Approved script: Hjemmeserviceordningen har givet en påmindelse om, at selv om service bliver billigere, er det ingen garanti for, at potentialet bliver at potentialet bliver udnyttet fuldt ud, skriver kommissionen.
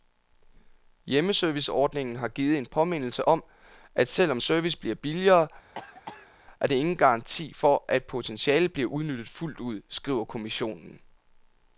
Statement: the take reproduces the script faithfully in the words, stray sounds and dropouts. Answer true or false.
false